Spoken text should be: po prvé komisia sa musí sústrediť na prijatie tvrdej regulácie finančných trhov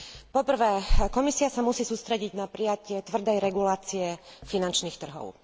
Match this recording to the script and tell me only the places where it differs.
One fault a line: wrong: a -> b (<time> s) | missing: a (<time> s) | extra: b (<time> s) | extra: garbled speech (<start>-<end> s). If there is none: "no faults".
no faults